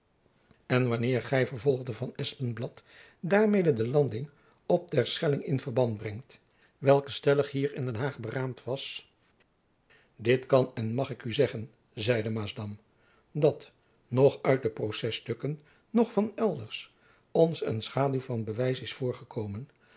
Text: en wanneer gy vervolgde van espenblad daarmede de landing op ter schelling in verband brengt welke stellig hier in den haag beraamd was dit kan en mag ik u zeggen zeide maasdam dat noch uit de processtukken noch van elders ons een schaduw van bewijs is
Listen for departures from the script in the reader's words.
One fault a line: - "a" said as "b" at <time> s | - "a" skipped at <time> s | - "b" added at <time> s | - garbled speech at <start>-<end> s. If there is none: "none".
none